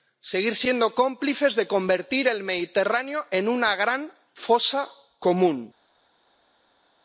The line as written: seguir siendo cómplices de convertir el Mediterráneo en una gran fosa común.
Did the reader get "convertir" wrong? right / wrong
right